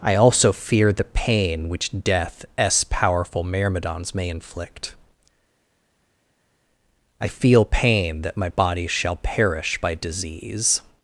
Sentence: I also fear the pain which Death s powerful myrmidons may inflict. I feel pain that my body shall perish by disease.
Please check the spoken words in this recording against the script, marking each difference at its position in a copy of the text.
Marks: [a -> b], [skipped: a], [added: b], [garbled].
I also fear the pain which Death s powerful myrmidons may inflict. I feel pain that my body shall perish by disease.